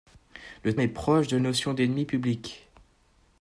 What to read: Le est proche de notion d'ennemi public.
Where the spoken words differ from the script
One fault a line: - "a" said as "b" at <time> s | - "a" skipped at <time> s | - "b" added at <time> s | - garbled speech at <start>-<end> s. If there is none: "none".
none